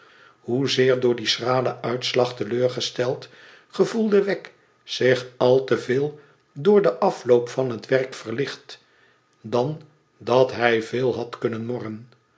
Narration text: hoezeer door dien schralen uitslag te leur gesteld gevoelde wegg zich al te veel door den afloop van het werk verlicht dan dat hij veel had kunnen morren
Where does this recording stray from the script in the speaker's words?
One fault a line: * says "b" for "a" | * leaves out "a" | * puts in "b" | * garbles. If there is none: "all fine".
all fine